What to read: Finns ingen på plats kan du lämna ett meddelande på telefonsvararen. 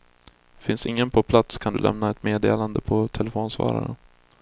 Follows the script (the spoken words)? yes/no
yes